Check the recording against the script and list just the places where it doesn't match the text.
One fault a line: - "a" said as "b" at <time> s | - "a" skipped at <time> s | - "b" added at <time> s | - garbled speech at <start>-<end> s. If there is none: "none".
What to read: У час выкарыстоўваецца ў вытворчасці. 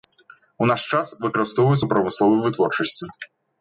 - "наш" added at 0.7 s
- "прамысловай" added at 2.0 s